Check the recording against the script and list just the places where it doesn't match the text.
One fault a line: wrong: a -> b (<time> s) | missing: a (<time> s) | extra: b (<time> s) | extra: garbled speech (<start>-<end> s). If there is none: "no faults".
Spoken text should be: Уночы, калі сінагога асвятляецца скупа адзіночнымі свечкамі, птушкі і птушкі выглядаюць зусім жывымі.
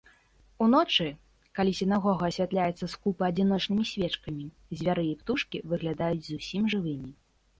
wrong: птушкі -> звяры (4.8 s)